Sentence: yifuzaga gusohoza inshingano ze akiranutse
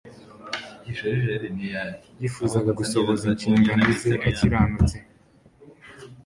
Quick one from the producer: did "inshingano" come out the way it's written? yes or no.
yes